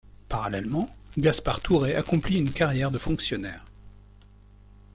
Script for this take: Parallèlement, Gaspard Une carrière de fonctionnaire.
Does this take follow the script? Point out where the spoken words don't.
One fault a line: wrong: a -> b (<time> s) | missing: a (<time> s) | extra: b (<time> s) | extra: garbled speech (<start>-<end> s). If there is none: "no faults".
extra: Tourret accomplit (1.6 s)